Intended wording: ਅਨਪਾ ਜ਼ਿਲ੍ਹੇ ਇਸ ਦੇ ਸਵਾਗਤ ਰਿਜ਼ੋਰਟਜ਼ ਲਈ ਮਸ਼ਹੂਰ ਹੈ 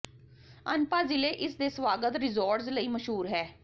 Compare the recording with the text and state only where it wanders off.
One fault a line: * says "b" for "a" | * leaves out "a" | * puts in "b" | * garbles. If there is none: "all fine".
all fine